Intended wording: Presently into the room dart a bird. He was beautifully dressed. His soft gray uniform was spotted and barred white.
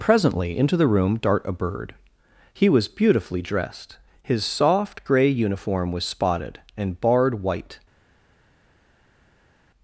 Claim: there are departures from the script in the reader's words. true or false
false